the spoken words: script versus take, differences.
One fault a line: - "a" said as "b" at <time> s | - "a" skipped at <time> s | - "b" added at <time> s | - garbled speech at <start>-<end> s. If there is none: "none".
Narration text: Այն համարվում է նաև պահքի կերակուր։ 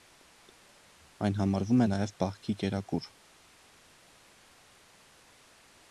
none